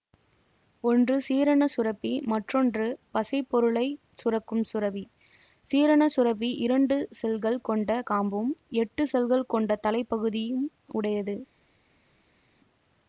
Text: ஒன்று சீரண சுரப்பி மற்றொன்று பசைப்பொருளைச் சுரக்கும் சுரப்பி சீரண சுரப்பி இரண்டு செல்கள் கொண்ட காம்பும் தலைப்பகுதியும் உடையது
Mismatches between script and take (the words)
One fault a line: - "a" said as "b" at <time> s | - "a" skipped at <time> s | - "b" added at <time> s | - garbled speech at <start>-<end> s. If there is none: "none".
- "எட்டு செல்கள் கொண்ட" added at 8.8 s